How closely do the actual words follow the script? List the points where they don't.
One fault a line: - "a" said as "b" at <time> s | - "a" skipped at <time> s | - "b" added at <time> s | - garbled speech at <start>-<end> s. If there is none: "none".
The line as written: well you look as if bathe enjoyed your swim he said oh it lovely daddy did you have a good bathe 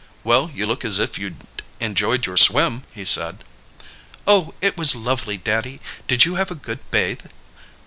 - "bathe" said as "you'd" at 1.2 s
- "was" added at 4.8 s